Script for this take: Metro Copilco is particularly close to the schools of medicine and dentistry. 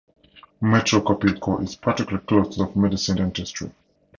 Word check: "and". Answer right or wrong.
wrong